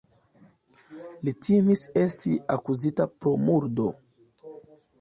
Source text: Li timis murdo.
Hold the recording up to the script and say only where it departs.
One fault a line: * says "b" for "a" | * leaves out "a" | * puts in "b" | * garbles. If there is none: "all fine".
* puts in "esti akuzita pro"